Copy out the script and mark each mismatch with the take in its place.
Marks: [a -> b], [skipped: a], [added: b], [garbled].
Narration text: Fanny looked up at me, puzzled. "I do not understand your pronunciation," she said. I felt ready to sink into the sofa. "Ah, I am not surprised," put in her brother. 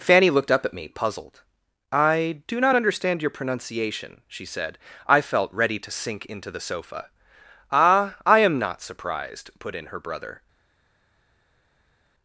Fanny looked up at me, puzzled. "I do not understand your pronunciation," she said. I felt ready to sink into the sofa. "Ah, I am not surprised," put in her brother.